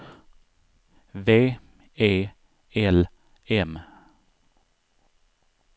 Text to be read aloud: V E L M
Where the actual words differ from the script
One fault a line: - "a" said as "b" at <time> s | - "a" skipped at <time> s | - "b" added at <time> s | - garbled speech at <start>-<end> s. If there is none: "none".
none